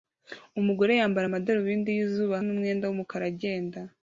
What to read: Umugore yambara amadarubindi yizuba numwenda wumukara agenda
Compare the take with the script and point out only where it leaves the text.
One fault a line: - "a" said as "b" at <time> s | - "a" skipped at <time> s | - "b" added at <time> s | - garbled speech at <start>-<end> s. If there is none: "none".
none